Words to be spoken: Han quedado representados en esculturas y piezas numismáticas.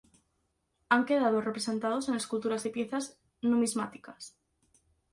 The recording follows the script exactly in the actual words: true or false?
true